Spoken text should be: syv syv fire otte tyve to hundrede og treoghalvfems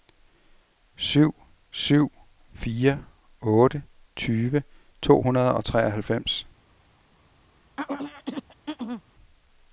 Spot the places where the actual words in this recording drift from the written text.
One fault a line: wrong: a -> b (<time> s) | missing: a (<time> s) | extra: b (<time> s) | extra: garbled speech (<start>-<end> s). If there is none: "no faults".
no faults